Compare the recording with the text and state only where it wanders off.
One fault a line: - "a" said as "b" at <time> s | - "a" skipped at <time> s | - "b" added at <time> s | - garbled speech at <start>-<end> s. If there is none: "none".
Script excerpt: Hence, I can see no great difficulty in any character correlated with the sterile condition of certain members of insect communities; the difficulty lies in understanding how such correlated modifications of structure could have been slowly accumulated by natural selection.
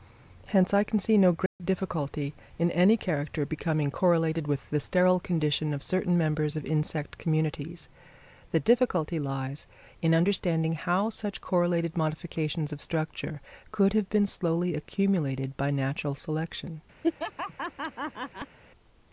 - "becoming" added at 3.4 s